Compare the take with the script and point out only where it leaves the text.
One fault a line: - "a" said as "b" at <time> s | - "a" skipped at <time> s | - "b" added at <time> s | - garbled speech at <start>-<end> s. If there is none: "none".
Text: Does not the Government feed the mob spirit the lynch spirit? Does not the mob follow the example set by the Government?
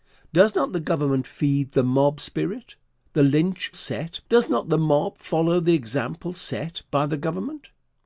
- "spirit" said as "set" at 3.7 s